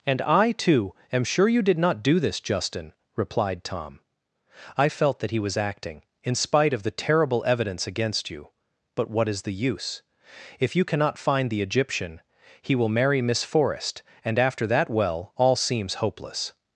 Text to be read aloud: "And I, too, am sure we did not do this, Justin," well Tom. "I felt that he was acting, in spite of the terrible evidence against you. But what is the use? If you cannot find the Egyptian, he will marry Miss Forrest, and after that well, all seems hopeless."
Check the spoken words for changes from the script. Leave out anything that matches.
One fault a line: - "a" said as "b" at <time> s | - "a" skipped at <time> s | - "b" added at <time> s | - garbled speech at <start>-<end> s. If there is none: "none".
- "we" said as "you" at 1.5 s
- "well" said as "replied" at 3.1 s